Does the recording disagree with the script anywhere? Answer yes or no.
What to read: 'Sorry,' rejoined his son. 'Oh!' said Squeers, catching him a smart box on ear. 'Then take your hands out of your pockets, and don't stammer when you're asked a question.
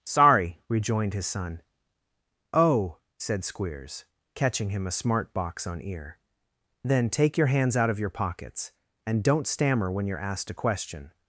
no